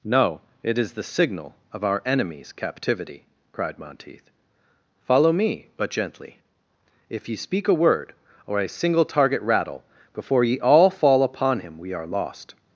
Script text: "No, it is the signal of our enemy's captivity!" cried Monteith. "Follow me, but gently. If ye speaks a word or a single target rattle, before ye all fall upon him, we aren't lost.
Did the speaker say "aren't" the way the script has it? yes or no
no